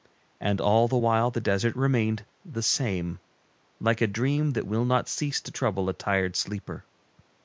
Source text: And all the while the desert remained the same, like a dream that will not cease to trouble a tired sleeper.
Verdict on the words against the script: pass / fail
pass